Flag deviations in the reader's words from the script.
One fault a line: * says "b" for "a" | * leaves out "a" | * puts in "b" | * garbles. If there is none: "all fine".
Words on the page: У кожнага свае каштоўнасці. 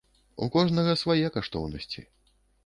all fine